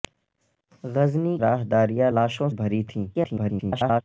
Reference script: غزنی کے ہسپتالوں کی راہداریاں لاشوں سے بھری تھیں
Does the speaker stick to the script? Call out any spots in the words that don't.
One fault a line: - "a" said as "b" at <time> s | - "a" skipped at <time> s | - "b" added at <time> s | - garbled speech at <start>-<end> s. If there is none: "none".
- "کے ہسپتالوں کی" skipped at 1.4 s
- "سے" skipped at 2.5 s
- garbled speech at 3.1-4.0 s